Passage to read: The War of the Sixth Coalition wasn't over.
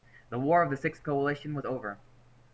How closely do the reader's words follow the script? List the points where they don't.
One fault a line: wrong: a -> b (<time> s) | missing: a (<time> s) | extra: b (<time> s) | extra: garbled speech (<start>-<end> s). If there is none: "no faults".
wrong: wasn't -> was (1.5 s)